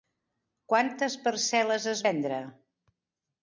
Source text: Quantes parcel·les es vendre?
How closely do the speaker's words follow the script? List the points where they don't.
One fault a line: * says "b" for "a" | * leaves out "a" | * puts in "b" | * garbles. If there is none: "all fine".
all fine